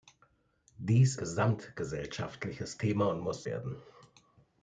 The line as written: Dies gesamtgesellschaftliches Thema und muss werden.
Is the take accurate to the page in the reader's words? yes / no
yes